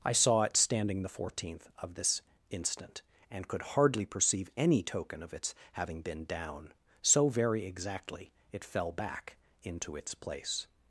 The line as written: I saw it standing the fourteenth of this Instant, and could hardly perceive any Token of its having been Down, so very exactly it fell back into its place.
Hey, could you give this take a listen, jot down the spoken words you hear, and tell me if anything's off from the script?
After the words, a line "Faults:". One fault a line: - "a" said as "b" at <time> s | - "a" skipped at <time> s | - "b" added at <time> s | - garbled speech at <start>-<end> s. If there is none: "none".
I saw it standing the fourteenth of this Instant, and could hardly perceive any Token of its having been Down, so very exactly it fell back into its place.
Faults:
none